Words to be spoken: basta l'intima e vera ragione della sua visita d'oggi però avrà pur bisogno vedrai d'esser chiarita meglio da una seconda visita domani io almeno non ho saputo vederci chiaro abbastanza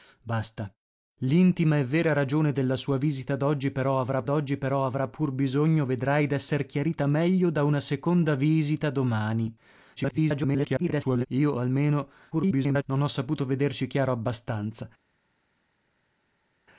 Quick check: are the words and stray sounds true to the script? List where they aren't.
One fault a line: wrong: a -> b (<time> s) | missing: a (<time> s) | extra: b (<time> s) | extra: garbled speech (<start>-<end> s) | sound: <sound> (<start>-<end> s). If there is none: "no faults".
extra: d'oggi però avrà (4.2 s)
extra: garbled speech (10.0-11.3 s)
extra: garbled speech (12.3-12.8 s)